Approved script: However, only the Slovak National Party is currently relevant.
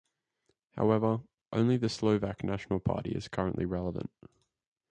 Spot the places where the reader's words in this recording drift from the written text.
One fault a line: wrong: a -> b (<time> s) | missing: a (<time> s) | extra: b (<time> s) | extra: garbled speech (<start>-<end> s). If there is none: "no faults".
no faults